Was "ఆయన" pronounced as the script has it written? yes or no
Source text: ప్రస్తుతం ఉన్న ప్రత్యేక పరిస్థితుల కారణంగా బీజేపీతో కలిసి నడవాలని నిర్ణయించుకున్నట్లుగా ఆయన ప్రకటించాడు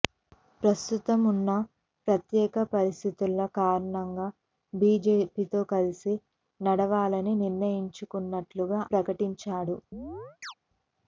no